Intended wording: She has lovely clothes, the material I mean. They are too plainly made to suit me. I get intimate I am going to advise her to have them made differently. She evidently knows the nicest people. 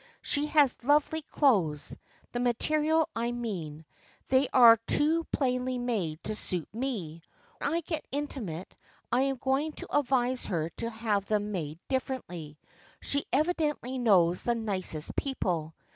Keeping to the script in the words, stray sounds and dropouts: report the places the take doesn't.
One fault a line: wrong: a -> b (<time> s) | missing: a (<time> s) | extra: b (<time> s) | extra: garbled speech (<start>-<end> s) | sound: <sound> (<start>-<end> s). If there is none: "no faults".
no faults